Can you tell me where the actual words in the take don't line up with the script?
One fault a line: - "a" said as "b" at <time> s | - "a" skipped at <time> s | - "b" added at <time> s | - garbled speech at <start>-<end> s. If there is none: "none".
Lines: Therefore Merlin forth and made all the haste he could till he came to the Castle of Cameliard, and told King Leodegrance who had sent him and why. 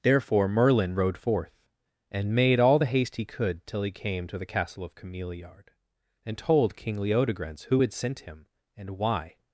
- "rode" added at 0.9 s